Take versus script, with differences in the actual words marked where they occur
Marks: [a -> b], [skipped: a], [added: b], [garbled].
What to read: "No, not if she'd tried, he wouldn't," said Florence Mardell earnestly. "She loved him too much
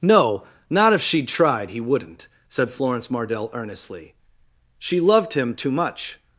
"No, not if she'd tried, he wouldn't," said Florence Mardell earnestly. "She loved him too much